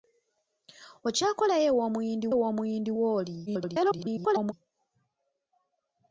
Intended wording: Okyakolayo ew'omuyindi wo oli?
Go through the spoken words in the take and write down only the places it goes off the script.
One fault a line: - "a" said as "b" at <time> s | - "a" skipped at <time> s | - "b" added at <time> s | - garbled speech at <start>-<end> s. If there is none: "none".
- "ew'omuyindi" added at 2.3 s
- garbled speech at 3.5-4.5 s